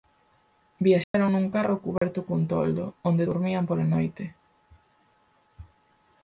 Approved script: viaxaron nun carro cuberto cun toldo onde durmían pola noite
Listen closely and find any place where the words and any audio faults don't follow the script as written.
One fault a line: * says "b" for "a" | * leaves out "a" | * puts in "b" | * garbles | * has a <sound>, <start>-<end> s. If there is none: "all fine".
* has a dropout, 1.0-1.1 s
* has a dropout, 2.0-2.0 s